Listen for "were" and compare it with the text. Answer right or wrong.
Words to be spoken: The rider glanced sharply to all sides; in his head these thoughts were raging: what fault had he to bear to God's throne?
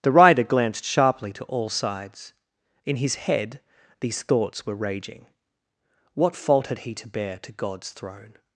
right